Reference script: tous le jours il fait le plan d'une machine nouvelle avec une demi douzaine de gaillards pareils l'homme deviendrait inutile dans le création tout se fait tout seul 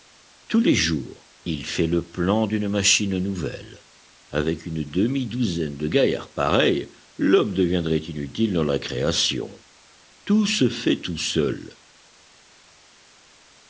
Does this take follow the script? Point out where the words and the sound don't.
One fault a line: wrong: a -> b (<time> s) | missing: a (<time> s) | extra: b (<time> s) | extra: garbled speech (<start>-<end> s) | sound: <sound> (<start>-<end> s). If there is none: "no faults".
wrong: le -> les (0.6 s)
wrong: le -> la (8.6 s)